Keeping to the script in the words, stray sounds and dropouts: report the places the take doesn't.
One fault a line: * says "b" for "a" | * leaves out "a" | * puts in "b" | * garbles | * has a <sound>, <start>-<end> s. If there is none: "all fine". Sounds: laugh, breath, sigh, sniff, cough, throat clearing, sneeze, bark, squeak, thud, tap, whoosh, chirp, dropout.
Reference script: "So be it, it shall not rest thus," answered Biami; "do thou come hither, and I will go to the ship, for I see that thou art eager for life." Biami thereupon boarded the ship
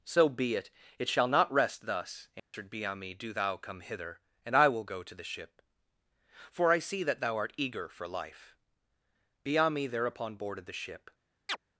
* has a dropout, 2.4-2.5 s
* has a chirp, 11.5-11.6 s